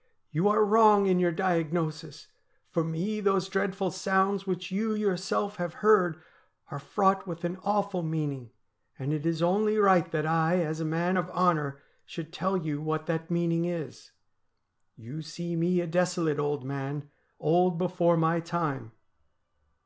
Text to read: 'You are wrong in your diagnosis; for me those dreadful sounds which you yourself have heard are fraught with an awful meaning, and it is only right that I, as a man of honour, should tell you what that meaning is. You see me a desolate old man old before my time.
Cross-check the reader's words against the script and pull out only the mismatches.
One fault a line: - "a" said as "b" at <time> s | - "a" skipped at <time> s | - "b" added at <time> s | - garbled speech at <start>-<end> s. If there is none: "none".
none